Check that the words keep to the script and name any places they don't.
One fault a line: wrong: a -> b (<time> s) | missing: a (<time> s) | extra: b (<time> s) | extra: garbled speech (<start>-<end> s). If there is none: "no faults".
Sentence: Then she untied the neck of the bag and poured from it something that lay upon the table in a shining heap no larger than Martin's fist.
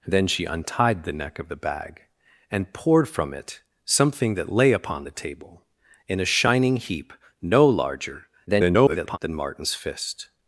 extra: garbled speech (8.5-9.2 s)